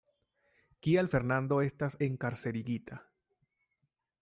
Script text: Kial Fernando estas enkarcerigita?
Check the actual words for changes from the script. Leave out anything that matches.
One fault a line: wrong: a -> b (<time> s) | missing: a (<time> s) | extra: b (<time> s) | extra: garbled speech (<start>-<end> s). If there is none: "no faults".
no faults